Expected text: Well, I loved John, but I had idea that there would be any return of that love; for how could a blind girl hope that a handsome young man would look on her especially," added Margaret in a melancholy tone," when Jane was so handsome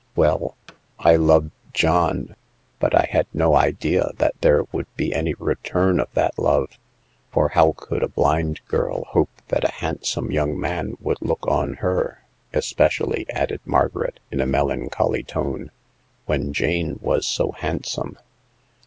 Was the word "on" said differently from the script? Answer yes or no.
no